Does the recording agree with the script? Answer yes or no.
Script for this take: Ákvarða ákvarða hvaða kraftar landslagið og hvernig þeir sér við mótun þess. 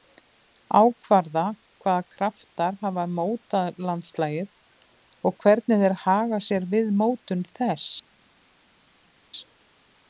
no